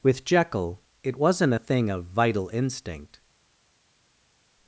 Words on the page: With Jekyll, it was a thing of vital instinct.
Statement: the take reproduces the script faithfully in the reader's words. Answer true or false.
false